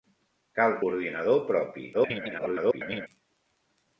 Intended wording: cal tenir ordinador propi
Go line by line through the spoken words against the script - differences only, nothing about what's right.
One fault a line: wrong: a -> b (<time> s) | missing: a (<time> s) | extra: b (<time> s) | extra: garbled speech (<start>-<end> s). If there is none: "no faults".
missing: tenir (0.7 s)
extra: garbled speech (1.9-3.1 s)